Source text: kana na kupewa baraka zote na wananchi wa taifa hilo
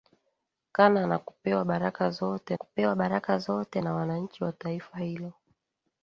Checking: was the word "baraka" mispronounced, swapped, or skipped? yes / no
no